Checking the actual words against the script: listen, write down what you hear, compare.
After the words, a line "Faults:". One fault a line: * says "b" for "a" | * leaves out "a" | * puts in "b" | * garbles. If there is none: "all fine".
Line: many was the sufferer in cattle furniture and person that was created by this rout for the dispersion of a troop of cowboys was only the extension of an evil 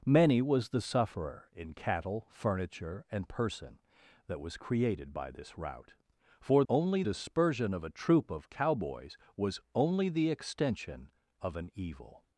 many was the sufferer in cattle furniture and person that was created by this rout for only dispersion of a troop of cowboys was only the extension of an evil
Faults:
* says "only" for "the"